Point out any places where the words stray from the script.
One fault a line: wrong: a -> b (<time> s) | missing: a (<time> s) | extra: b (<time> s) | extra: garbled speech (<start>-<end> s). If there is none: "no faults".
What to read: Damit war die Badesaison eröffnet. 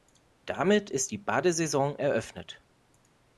wrong: war -> ist (0.9 s)